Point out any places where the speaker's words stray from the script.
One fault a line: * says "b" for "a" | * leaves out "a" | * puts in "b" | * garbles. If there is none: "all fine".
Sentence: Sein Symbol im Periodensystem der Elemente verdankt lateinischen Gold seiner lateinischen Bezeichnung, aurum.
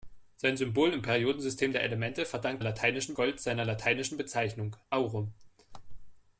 all fine